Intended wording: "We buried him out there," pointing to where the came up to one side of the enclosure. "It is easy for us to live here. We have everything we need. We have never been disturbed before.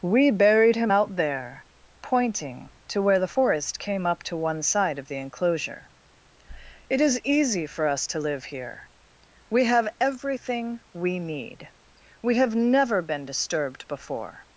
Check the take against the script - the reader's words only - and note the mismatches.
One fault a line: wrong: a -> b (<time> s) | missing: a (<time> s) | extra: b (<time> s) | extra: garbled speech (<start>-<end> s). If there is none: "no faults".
extra: forest (3.3 s)